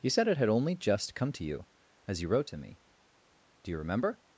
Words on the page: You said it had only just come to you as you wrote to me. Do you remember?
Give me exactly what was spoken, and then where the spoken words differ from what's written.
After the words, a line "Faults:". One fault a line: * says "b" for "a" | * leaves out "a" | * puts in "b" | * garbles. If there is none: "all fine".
You said it had only just come to you as you wrote to me. Do you remember?
Faults:
all fine